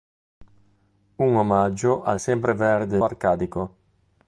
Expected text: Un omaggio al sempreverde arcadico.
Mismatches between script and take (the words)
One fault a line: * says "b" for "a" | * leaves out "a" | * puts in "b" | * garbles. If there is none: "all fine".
all fine